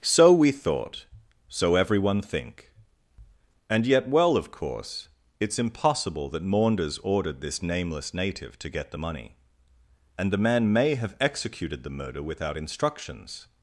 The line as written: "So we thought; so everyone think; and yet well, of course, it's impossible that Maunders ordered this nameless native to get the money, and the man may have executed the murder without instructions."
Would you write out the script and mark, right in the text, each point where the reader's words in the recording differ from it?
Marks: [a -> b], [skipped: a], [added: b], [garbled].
"So we thought; so everyone think; and yet well, of course, it's impossible that Maunders ordered this nameless native to get the money, and the man may have executed the murder without instructions."